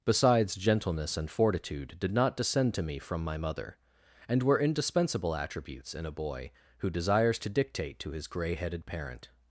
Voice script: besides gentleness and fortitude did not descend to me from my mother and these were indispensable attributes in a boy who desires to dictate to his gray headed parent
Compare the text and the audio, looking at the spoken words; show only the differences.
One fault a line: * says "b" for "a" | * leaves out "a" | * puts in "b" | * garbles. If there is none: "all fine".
* leaves out "these"